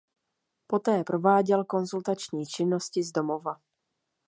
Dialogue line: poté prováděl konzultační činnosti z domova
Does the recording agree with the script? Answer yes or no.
yes